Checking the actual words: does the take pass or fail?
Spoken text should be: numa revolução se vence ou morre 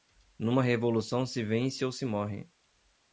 fail